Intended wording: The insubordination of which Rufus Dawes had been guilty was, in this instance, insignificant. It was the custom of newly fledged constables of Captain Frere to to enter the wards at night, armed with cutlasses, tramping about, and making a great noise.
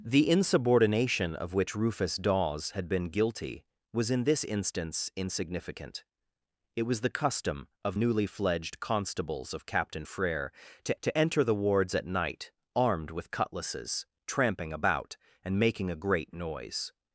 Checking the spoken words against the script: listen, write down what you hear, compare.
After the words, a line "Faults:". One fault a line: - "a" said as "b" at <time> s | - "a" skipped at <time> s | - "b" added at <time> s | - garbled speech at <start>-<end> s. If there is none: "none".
The insubordination of which Rufus Dawes had been guilty was, in this instance, insignificant. It was the custom of newly fledged constables of Captain Frere to to enter the wards at night, armed with cutlasses, tramping about, and making a great noise.
Faults:
none